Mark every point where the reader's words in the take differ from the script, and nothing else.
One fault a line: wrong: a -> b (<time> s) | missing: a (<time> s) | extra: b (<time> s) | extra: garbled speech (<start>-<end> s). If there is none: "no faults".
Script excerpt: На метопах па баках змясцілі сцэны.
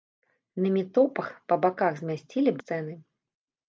no faults